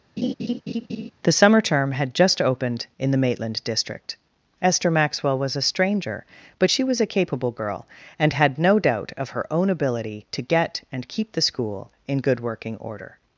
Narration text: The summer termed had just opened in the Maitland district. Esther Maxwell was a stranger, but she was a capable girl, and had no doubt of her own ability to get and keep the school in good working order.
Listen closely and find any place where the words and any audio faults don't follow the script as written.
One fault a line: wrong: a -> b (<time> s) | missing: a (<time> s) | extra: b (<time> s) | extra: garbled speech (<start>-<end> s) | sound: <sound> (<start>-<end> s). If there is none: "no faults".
sound: laugh (0.2-1.1 s)
wrong: termed -> term (1.6 s)